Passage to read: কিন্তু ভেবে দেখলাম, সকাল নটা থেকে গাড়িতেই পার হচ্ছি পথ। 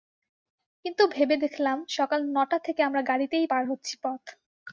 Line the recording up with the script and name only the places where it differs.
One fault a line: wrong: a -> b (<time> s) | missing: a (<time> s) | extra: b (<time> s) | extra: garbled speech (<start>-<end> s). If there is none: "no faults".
extra: আমরা (2.8 s)